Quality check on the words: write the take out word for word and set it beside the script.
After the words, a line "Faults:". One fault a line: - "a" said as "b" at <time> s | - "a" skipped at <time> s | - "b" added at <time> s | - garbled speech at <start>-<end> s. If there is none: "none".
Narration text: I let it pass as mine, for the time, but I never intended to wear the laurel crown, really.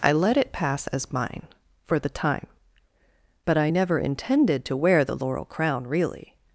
I let it pass as mine, for the time, but I never intended to wear the laurel crown, really.
Faults:
none